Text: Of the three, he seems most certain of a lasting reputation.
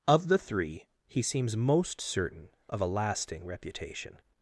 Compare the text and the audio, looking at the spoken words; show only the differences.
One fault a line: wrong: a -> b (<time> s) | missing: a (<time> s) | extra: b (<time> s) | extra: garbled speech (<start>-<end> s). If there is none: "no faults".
no faults